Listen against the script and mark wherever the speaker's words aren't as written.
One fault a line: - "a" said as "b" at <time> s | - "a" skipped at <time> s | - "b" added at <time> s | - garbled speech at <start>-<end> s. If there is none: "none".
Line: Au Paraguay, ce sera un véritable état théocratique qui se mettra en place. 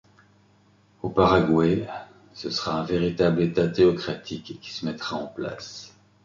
none